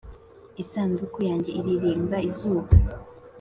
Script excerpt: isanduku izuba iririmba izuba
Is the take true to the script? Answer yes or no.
no